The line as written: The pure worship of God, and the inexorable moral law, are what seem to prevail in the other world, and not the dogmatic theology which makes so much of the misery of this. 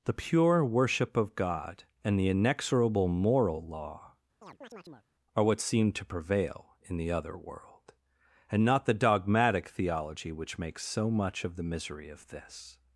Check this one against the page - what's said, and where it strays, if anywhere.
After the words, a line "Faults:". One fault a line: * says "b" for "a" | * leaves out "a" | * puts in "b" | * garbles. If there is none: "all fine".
The pure worship of God, and the inexorable moral law, are what seem to prevail in the other world, and not the dogmatic theology which makes so much of the misery of this.
Faults:
all fine